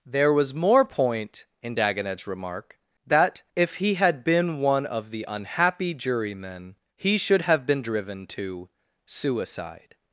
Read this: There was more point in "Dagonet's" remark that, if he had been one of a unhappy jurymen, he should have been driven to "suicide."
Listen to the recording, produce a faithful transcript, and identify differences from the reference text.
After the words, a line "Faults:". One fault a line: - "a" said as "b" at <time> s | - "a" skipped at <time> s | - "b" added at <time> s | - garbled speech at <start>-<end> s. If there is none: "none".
There was more point in "Dagonet's" remark that, if he had been one of the unhappy jurymen, he should have been driven to "suicide."
Faults:
- "a" said as "the" at 5.1 s